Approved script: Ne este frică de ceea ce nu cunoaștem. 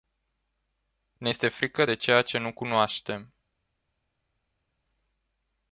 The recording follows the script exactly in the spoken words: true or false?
true